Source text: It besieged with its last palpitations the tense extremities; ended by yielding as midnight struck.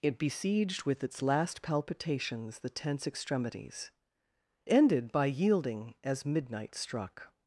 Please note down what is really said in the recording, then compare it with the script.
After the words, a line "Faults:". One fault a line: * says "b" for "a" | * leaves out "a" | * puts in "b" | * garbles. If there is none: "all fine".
It besieged with its last palpitations the tense extremities; ended by yielding as midnight struck.
Faults:
all fine